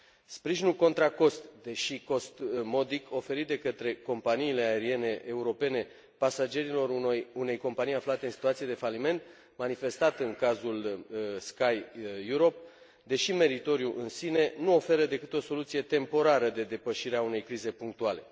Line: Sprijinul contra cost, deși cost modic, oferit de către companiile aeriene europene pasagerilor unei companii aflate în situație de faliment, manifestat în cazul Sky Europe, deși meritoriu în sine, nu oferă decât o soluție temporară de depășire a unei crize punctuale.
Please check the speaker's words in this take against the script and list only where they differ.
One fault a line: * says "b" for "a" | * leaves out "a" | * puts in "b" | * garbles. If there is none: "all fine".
all fine